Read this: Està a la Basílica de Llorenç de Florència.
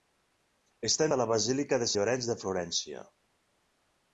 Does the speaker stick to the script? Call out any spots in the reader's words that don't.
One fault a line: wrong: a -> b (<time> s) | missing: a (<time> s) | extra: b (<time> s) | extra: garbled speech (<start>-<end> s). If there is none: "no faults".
no faults